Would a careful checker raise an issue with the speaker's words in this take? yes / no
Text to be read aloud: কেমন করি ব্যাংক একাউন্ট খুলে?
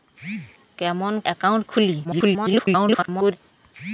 yes